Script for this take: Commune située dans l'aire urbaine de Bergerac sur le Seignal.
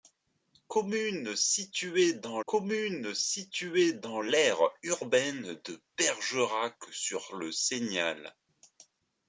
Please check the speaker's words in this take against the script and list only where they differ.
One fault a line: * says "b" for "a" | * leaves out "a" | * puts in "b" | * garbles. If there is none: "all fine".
* puts in "commune située dans"